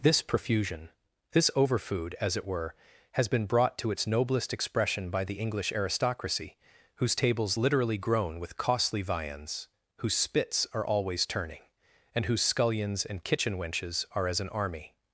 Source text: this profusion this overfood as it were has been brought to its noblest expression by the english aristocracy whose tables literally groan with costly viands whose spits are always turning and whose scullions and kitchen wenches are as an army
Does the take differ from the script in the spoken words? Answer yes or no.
no